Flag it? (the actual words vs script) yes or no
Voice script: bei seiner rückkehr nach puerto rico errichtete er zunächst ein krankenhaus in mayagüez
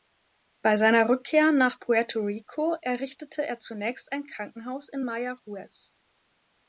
no